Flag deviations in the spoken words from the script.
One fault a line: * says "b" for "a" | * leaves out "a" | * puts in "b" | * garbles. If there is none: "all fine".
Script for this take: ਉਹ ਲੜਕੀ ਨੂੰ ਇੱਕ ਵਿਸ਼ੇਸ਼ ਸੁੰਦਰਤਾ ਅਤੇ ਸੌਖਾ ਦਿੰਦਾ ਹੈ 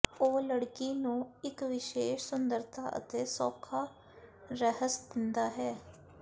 * puts in "ਰਹੱਸ"